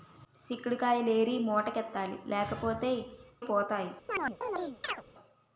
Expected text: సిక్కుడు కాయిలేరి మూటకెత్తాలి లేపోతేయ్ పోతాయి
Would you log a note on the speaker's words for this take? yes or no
no